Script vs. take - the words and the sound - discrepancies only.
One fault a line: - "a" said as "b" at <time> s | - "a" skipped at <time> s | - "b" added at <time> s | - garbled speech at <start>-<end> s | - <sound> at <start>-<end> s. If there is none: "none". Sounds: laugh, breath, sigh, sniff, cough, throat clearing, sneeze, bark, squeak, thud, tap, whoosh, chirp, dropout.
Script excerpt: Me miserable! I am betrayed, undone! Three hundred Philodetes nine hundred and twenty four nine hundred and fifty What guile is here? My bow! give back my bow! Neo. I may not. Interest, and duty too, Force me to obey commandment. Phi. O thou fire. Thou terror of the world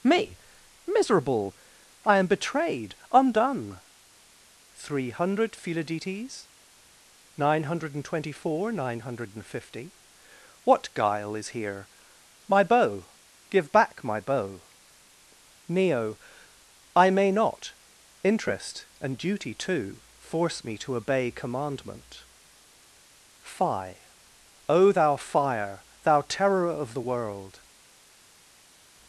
none